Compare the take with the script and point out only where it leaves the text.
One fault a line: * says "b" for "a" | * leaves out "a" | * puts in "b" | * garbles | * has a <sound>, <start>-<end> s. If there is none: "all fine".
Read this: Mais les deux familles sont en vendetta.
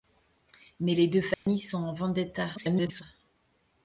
* has a dropout, 1.3-1.5 s
* garbles